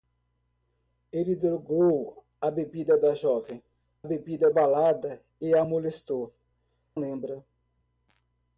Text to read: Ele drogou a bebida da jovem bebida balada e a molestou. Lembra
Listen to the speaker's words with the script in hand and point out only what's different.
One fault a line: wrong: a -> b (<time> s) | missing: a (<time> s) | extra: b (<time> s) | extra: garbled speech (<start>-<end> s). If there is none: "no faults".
no faults